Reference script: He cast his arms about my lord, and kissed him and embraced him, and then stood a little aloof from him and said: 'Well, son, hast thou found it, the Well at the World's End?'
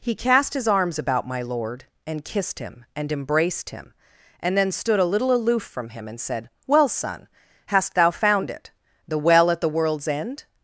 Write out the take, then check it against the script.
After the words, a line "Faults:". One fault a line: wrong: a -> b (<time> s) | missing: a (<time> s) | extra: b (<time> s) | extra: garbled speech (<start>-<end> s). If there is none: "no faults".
He cast his arms about my lord, and kissed him and embraced him, and then stood a little aloof from him and said: 'Well, son, hast thou found it, the Well at the World's End?'
Faults:
no faults